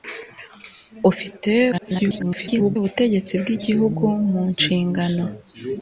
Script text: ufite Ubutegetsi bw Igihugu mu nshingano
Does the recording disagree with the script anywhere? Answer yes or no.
yes